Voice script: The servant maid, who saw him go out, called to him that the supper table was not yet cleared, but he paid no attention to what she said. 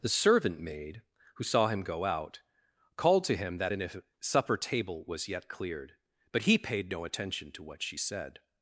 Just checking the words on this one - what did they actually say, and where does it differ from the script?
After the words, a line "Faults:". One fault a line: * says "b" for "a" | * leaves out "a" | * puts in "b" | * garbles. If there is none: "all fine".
The servant maid, who saw him go out, called to him that an supper table was yet cleared, but he paid no attention to what she said.
Faults:
* says "an" for "the"
* leaves out "not"